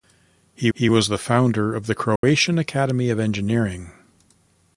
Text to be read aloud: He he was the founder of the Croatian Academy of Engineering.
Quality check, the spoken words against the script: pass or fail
pass